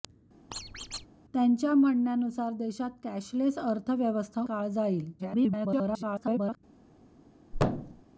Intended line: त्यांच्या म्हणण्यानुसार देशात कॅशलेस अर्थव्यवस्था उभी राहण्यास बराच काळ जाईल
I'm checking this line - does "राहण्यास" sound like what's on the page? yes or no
no